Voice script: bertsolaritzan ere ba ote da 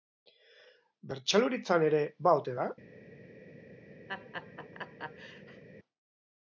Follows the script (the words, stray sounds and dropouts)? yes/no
no